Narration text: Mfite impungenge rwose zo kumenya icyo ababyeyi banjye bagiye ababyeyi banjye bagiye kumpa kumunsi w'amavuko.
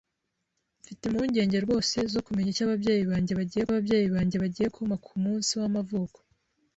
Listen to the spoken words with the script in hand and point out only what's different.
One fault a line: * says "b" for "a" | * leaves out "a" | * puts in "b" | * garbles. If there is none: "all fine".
all fine